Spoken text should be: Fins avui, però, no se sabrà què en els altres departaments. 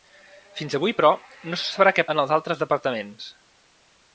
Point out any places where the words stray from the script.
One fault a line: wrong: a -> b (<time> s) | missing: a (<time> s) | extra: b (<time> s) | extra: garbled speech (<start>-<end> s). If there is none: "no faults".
no faults